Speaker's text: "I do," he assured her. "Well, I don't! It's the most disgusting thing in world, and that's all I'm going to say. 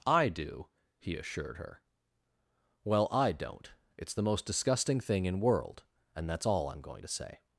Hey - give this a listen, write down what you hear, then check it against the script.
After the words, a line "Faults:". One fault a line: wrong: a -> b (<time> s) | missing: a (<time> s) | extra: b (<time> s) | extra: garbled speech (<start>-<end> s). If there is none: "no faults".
"I do," he assured her. "Well, I don't! It's the most disgusting thing in world, and that's all I'm going to say.
Faults:
no faults